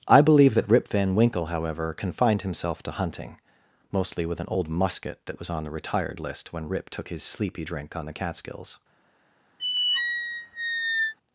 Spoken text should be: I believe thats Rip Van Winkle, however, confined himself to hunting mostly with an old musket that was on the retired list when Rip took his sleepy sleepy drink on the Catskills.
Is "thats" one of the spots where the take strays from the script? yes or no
yes